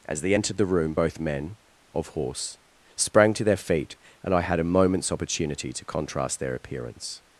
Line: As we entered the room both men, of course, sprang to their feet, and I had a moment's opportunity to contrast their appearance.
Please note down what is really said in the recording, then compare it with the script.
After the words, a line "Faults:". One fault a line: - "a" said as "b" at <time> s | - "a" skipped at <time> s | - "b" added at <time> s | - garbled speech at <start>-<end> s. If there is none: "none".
As they entered the room both men, of horse, sprang to their feet, and I had a moment's opportunity to contrast their appearance.
Faults:
- "we" said as "they" at 0.2 s
- "course" said as "horse" at 2.1 s